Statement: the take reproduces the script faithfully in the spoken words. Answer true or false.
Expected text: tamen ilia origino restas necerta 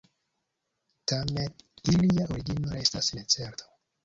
true